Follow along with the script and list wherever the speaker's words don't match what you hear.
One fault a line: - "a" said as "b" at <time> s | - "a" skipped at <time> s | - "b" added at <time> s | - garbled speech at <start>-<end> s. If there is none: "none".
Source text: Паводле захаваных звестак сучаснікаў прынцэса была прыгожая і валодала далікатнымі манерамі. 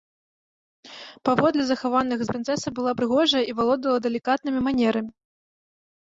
- "звестак сучаснікаў" skipped at 2.2 s